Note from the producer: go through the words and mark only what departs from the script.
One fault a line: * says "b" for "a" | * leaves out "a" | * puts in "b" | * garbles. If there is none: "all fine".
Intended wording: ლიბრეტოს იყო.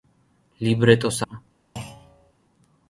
all fine